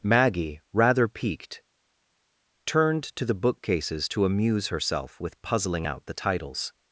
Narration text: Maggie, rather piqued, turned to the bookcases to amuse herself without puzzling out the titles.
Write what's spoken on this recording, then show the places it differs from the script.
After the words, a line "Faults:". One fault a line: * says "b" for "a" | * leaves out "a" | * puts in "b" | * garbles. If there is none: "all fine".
Maggie, rather piqued, turned to the bookcases to amuse herself with puzzling out the titles.
Faults:
* says "with" for "without"